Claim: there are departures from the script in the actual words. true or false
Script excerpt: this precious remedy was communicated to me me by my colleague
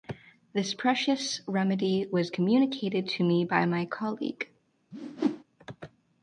true